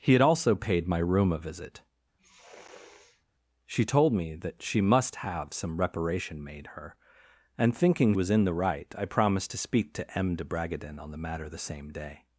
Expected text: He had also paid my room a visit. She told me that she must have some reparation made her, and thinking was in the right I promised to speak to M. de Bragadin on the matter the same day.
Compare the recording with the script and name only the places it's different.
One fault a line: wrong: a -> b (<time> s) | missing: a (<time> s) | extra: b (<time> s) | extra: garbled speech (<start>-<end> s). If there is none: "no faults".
no faults